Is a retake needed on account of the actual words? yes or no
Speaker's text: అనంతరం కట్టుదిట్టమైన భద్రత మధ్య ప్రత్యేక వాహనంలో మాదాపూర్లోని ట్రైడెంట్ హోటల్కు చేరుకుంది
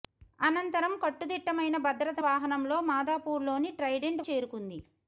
yes